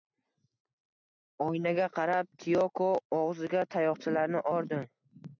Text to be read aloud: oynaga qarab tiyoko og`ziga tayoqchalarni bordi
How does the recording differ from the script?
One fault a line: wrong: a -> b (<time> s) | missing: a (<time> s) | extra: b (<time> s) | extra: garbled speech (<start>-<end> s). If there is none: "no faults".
no faults